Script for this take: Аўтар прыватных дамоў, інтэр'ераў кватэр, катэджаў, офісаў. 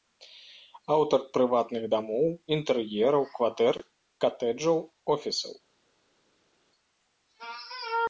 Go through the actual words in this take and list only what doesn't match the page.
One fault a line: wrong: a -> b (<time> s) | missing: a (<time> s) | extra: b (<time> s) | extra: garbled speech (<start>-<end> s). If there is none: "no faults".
no faults